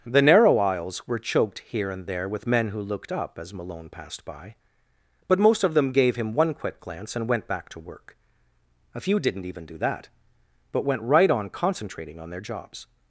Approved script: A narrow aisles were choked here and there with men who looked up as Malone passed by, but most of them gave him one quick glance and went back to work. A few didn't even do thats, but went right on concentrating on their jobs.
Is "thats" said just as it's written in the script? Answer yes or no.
no